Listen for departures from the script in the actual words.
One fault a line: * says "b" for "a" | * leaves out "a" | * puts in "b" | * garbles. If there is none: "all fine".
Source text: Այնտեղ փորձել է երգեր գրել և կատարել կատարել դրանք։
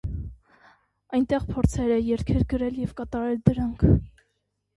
* leaves out "կատարել"